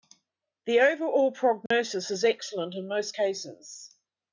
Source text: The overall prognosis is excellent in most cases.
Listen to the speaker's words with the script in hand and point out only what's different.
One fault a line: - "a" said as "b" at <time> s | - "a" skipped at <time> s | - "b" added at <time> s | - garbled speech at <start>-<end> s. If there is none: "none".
none